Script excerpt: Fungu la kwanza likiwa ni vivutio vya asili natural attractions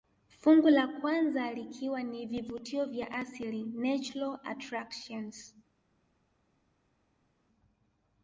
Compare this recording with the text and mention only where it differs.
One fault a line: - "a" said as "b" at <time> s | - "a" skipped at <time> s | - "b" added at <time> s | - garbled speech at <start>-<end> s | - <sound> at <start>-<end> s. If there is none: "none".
none